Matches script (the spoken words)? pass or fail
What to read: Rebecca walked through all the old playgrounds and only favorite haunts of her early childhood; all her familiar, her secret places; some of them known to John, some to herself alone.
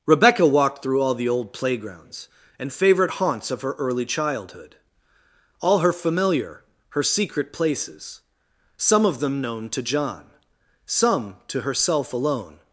fail